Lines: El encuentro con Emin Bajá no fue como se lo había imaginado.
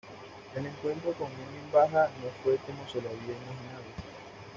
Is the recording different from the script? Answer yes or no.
no